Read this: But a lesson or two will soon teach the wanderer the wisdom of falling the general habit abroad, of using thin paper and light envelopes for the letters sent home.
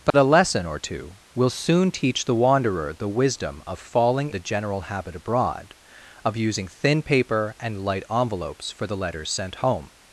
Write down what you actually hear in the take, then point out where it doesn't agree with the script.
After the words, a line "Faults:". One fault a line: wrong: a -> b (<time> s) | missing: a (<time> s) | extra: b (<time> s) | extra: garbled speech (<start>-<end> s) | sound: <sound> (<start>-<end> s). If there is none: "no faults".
But a lesson or two will soon teach the wanderer the wisdom of falling the general habit abroad, of using thin paper and light envelopes for the letters sent home.
Faults:
sound: dropout (0.1-0.1 s)